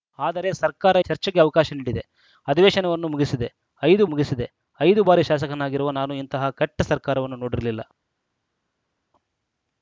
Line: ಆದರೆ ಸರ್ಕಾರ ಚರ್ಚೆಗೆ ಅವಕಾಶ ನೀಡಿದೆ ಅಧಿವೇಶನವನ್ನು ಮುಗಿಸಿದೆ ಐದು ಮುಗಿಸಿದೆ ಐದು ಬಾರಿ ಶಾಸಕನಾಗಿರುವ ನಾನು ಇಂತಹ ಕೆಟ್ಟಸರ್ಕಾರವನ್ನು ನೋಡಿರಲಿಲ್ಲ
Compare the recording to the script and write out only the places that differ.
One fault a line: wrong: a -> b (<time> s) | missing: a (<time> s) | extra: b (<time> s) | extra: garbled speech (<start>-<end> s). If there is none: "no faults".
no faults